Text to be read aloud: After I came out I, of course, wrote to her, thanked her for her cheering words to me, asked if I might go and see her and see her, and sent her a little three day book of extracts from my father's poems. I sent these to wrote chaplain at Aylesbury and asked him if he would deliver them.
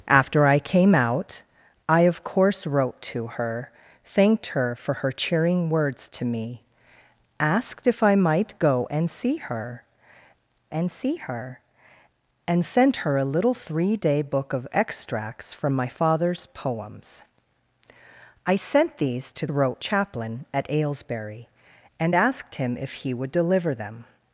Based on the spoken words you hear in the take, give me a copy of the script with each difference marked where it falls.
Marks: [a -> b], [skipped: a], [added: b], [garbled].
After I came out I, of course, wrote to her, thanked her for her cheering words to me, asked if I might go and see her and see her, and sent her a little three day book of extracts from my father's poems. I sent these to wrote chaplain at Aylesbury and asked him if he would deliver them.